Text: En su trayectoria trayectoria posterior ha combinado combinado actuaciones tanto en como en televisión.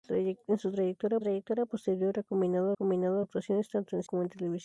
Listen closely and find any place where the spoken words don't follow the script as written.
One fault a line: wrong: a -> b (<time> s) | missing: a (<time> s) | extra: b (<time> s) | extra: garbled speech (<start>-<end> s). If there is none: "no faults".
no faults